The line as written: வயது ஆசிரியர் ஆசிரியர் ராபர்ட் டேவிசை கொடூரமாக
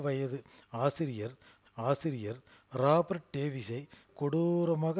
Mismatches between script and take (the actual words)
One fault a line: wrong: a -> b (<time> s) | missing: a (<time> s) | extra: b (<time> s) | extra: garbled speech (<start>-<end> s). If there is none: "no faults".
no faults